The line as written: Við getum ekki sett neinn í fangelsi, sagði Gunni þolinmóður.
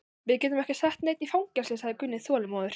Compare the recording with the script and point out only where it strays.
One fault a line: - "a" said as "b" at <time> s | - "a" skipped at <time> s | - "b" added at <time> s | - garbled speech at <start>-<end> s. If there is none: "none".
none